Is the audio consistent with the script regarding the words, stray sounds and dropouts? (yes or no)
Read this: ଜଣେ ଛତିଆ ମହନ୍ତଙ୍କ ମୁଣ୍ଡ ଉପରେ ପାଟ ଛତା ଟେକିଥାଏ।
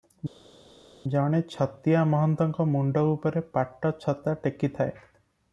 yes